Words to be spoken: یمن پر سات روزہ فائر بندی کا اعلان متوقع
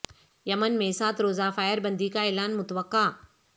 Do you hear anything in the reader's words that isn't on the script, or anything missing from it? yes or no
yes